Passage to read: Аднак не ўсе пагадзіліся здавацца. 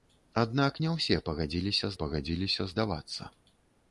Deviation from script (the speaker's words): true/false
true